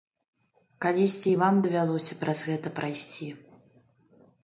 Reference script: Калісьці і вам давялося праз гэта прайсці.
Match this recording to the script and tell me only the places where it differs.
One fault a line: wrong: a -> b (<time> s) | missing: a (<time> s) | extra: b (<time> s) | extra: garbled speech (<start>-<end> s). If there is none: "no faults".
no faults